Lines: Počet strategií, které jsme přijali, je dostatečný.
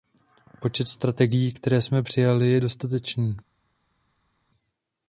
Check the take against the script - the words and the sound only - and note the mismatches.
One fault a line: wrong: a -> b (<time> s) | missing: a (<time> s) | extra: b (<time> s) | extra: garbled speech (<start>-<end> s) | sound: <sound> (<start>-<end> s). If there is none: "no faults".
no faults